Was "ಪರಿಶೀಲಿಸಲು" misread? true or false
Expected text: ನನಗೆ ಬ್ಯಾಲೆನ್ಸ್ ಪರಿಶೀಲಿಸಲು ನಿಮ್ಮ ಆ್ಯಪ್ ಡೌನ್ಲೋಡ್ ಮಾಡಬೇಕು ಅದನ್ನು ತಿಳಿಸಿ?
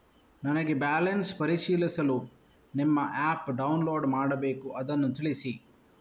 false